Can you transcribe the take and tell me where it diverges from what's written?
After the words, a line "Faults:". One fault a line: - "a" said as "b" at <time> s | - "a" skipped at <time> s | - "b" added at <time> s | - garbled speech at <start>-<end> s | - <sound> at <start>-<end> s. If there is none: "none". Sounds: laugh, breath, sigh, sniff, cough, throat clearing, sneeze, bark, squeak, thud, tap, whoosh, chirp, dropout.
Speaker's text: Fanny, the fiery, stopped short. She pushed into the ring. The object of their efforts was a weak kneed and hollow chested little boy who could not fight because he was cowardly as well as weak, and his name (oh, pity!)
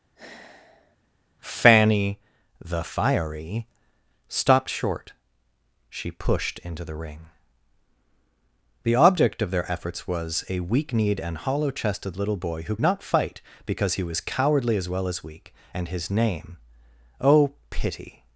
Fanny, the fiery, stopped short. She pushed into the ring. The object of their efforts was a weak kneed and hollow chested little boy who not fight because he was cowardly as well as weak, and his name (oh, pity!)
Faults:
- sigh at 0.2-1.0 s
- "could" skipped at 12.8 s